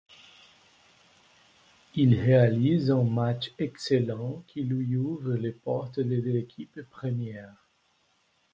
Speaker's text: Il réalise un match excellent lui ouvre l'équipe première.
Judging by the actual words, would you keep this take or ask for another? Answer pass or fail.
fail